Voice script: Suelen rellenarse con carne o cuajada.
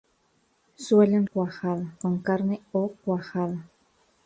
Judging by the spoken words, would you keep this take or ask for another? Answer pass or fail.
fail